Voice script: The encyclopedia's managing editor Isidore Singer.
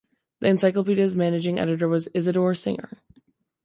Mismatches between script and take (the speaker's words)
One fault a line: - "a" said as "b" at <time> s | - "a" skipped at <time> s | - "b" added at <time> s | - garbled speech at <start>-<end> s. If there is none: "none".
- "was" added at 1.9 s